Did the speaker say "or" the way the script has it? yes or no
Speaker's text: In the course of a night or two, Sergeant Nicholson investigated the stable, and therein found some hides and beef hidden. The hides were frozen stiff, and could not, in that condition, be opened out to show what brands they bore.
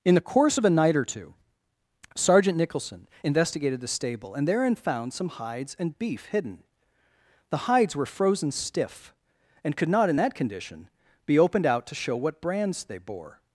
yes